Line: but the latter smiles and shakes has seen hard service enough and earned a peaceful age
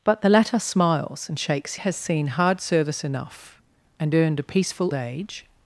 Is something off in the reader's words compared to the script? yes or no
no